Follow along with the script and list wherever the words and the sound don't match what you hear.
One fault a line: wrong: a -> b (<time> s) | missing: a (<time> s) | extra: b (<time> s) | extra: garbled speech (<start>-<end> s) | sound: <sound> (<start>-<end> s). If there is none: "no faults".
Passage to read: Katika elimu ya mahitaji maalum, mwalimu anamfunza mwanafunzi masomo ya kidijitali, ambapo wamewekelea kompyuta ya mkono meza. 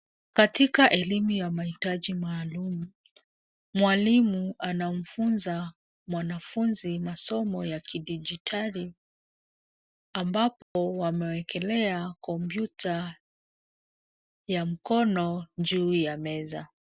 sound: dropout (10.6-10.8 s)
extra: juu ya (15.6 s)